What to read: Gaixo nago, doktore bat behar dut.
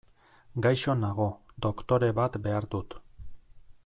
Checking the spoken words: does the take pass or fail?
pass